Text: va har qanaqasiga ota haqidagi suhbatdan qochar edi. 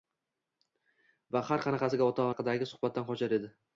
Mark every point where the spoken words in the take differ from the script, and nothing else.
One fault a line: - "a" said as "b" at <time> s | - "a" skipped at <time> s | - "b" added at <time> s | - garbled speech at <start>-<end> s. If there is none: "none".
none